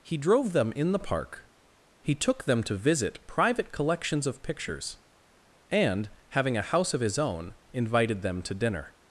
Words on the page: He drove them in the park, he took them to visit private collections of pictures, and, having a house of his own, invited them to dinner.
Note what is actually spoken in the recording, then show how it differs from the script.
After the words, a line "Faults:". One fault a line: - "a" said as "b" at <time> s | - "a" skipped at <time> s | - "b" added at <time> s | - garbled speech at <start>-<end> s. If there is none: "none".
He drove them in the park, he took them to visit private collections of pictures, and, having a house of his own, invited them to dinner.
Faults:
none